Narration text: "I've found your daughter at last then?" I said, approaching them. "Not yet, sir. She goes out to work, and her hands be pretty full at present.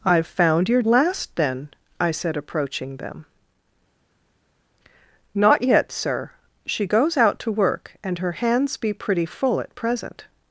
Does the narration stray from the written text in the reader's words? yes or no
yes